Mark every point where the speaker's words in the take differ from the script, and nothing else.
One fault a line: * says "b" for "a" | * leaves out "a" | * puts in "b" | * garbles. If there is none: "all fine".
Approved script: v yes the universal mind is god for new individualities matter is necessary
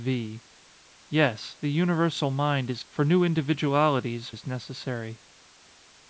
* leaves out "god"
* leaves out "matter"